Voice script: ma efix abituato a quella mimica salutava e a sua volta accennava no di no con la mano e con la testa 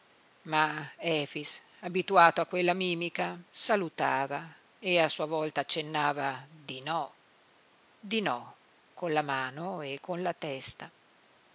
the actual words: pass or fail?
fail